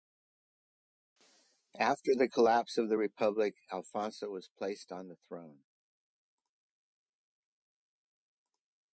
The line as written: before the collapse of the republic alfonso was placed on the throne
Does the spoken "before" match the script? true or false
false